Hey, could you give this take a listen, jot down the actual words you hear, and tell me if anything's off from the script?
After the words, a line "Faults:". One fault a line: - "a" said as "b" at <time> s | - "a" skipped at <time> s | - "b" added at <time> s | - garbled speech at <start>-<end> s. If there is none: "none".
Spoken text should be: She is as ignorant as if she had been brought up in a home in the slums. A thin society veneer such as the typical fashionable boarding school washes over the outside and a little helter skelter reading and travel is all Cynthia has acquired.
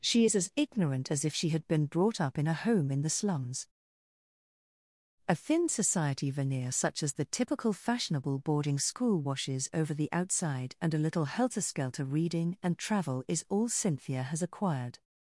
She is as ignorant as if she had been brought up in a home in the slums. A thin society veneer such as the typical fashionable boarding school washes over the outside and a little helter skelter reading and travel is all Cynthia has acquired.
Faults:
none